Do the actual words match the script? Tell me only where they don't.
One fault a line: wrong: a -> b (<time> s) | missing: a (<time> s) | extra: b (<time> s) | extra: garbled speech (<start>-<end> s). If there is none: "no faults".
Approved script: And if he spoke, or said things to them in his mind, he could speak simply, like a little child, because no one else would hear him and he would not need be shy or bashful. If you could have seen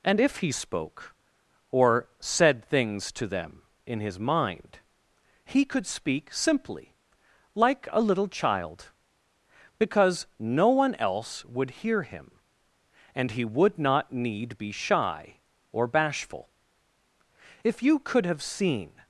no faults